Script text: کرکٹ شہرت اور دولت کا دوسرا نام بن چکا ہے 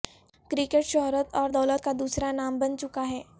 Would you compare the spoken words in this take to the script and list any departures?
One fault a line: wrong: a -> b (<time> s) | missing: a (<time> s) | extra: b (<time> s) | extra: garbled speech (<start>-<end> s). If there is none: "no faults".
no faults